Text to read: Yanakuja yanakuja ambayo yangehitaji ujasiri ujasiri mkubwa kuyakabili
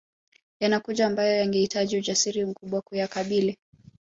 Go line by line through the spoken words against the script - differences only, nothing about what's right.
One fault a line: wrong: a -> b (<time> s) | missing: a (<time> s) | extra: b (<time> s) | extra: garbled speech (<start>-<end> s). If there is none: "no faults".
missing: yanakuja (1.1 s)
missing: ujasiri (2.5 s)